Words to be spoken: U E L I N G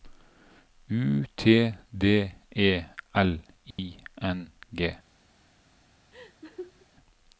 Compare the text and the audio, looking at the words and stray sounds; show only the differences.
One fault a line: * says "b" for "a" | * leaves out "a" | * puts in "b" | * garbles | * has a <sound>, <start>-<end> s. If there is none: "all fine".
* puts in "T D"
* has a dropout, 3.7-3.8 s
* has a laugh, 6.1-6.9 s